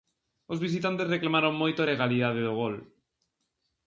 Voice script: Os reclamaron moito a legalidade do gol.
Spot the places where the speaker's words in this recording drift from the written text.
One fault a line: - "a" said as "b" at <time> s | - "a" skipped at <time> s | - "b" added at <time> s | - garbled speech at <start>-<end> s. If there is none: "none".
- "visitantes" added at 0.7 s